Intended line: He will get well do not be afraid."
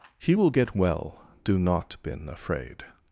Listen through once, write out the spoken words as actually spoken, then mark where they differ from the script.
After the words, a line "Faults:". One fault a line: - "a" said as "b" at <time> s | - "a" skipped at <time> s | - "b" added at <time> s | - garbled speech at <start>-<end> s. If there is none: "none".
He will get well do not been afraid."
Faults:
- "be" said as "been" at 2.0 s